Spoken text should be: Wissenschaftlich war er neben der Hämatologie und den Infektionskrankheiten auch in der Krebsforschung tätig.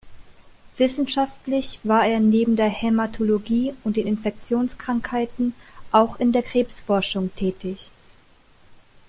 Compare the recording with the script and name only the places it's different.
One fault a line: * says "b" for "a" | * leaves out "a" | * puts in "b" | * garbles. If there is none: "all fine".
all fine